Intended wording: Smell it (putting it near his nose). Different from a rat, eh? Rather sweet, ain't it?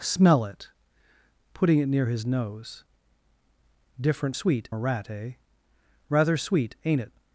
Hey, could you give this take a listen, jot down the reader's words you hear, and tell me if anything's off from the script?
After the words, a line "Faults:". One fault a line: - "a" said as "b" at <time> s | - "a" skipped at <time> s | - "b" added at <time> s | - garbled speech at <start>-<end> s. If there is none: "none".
Smell it (putting it near his nose). Different sweet a rat, eh? Rather sweet, ain't it?
Faults:
- "from" said as "sweet" at 4.3 s